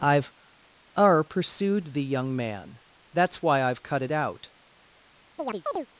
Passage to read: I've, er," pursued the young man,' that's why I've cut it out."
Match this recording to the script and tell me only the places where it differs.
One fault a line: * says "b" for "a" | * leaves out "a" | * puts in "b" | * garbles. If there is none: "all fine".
all fine